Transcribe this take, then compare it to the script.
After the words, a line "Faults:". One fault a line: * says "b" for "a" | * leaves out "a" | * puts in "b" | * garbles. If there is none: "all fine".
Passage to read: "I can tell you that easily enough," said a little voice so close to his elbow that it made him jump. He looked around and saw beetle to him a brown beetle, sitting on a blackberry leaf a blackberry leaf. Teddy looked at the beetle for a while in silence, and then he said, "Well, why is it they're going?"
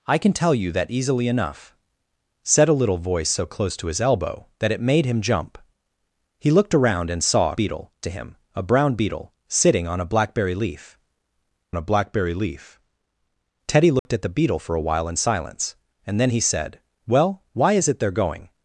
"I can tell you that easily enough," said a little voice so close to his elbow that it made him jump. He looked around and saw beetle to him a brown beetle, sitting on a blackberry leaf a blackberry leaf. Teddy looked at the beetle for a while in silence, and then he said, "Well, why is it they're going?"
Faults:
all fine